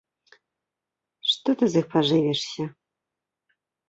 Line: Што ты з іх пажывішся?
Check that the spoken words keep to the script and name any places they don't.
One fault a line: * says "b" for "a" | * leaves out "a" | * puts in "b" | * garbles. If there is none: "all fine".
all fine